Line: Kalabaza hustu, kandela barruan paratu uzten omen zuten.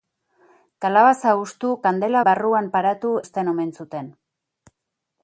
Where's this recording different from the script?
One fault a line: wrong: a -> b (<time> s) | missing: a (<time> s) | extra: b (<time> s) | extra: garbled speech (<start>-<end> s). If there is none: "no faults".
no faults